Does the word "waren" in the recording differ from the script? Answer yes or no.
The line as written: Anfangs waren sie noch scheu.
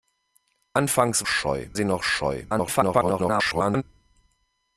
yes